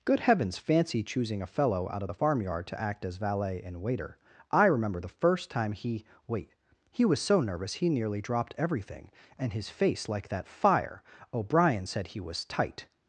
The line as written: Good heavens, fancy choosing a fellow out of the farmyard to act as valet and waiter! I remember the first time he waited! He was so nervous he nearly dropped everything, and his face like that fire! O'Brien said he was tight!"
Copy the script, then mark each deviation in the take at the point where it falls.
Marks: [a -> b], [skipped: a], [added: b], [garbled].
Good heavens, fancy choosing a fellow out of the farmyard to act as valet and waiter! I remember the first time he [waited! -> wait] He was so nervous he nearly dropped everything, and his face like that fire! O'Brien said he was tight!"